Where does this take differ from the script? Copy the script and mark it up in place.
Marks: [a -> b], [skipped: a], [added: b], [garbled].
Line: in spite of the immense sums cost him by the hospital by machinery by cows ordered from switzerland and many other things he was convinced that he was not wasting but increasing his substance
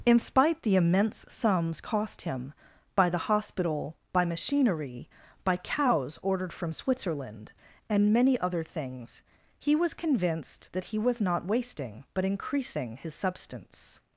in spite [skipped: of] the immense sums cost him by the hospital by machinery by cows ordered from switzerland and many other things he was convinced that he was not wasting but increasing his substance